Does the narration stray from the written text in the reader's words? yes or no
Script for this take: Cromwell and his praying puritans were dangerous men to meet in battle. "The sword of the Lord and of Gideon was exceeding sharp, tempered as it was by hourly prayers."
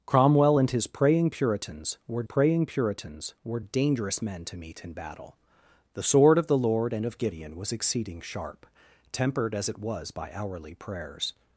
yes